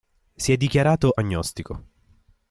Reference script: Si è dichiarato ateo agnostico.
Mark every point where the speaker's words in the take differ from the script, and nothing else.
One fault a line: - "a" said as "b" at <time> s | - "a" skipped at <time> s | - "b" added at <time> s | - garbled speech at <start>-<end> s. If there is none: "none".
- "ateo" skipped at 1.1 s